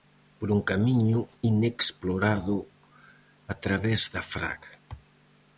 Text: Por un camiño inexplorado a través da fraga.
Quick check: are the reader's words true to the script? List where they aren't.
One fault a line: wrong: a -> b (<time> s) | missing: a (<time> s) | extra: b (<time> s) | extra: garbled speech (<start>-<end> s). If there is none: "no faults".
no faults